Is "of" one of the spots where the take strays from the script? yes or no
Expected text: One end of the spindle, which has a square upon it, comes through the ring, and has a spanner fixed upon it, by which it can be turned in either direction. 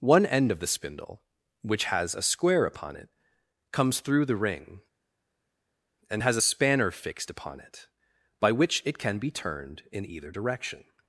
no